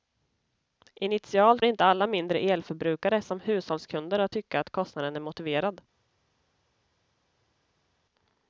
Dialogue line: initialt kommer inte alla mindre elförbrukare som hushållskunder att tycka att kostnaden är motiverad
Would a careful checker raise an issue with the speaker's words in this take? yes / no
yes